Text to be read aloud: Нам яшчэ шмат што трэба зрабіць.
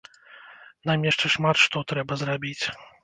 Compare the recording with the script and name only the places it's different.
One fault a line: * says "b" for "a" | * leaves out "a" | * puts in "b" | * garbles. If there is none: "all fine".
all fine